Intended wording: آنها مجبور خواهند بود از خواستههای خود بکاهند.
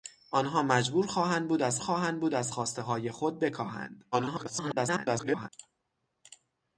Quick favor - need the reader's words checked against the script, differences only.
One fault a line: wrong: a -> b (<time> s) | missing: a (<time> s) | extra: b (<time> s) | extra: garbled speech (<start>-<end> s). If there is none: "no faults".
extra: خواهند بود از (1.8 s)
extra: garbled speech (4.1-5.5 s)